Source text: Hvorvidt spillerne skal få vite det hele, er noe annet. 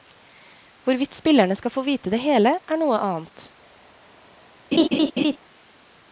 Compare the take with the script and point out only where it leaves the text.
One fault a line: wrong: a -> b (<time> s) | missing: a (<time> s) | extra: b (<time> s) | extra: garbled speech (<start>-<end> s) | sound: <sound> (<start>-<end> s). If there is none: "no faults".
sound: laugh (4.7-5.4 s)